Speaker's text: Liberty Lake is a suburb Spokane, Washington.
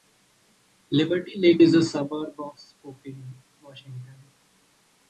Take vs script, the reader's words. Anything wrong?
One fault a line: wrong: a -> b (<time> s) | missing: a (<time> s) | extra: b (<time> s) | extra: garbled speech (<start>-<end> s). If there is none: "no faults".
extra: of (2.4 s)